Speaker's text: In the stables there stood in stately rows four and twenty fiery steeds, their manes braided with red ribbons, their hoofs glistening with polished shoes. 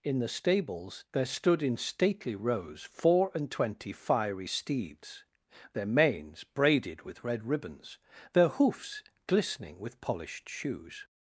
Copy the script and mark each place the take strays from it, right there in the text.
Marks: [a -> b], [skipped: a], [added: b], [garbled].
In the stables there stood in stately rows four and twenty fiery steeds, their manes braided with red ribbons, their hoofs glistening with polished shoes.